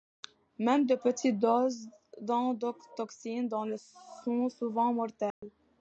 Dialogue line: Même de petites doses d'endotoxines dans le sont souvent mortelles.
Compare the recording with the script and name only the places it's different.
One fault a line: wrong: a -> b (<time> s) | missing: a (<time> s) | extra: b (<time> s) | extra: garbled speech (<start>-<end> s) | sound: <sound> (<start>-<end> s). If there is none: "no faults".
sound: dropout (5.3-5.4 s)